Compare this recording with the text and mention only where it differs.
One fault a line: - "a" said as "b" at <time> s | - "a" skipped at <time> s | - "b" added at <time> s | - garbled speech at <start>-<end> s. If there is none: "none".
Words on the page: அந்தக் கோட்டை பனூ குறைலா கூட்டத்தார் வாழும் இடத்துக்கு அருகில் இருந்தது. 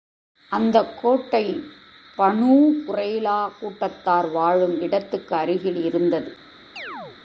none